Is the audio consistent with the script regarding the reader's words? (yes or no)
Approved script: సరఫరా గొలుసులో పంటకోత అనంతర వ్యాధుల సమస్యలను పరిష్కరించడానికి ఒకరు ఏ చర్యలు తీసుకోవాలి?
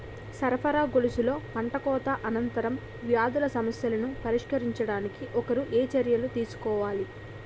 yes